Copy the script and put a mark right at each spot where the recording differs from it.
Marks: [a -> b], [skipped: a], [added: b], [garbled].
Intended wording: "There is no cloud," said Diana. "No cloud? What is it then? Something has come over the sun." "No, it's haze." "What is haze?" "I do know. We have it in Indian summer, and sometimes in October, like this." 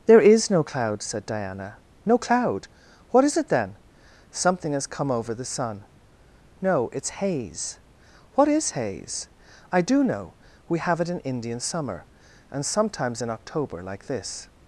"There is no cloud," said Diana. "No cloud? What is it then? Something has come over the sun." "No, it's haze." "What is haze?" "I do know. We have it in Indian summer, and sometimes in October, like this."